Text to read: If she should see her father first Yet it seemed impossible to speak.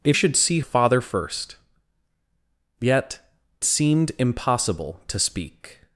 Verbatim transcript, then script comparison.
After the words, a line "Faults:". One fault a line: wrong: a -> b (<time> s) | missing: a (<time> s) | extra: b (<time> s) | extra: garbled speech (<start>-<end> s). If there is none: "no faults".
If should see father first Yet seemed impossible to speak.
Faults:
missing: she (0.2 s)
missing: her (0.6 s)
missing: it (3.2 s)